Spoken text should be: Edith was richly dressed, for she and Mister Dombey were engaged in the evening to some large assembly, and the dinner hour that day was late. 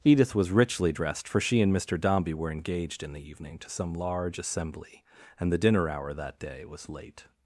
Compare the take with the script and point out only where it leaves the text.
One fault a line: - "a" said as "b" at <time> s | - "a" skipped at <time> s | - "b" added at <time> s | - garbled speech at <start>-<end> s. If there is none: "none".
none